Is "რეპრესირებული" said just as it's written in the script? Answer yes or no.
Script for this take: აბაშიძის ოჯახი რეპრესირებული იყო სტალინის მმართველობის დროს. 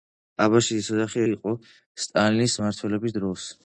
no